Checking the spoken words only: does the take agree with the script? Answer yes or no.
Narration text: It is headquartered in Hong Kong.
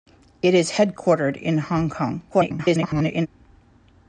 no